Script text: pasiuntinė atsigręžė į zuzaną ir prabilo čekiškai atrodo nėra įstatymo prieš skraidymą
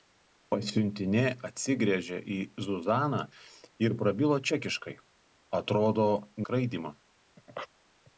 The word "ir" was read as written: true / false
true